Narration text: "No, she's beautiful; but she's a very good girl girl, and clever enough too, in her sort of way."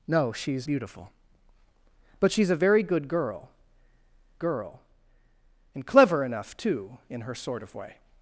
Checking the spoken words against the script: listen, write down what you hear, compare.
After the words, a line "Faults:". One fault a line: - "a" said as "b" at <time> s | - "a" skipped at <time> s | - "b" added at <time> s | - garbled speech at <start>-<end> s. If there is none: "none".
"No, she's beautiful; but she's a very good girl girl, and clever enough too, in her sort of way."
Faults:
none